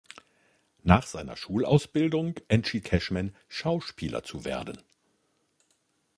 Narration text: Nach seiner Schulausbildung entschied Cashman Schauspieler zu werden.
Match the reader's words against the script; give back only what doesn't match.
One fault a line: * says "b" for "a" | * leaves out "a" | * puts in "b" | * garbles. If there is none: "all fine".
all fine